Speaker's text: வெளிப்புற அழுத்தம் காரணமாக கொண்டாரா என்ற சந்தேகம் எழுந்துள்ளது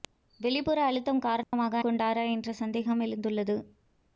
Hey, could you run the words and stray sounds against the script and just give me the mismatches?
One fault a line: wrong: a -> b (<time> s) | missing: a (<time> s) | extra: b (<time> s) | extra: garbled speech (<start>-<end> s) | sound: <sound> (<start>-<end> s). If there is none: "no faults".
sound: dropout (1.4-1.5 s)